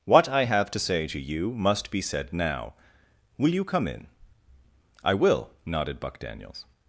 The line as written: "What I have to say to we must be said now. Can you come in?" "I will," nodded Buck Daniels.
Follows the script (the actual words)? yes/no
no